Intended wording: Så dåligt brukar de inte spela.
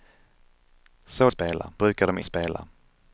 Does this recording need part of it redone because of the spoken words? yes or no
yes